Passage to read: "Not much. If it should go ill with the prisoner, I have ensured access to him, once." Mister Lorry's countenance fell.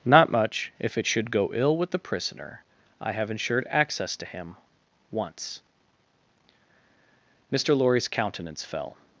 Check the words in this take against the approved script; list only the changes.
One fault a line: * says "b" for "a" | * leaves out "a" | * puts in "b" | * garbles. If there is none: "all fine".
all fine